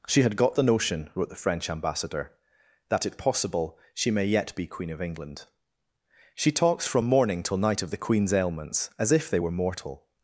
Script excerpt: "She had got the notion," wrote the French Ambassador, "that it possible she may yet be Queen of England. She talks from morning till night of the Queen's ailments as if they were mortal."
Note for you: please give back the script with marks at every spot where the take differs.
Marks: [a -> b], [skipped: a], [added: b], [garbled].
"She had got the notion," wrote the French Ambassador, "that it possible she may yet be Queen of England. She talks from morning till night of the Queen's ailments as if they were mortal."